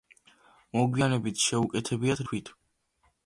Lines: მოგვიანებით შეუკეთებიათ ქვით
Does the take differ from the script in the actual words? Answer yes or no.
no